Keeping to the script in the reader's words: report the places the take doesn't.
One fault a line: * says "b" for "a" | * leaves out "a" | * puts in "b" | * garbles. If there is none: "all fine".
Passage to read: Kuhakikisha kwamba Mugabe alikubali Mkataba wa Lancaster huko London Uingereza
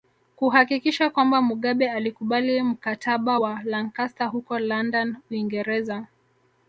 all fine